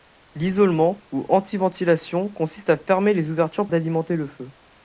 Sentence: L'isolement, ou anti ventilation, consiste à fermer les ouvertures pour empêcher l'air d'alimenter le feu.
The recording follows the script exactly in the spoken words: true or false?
false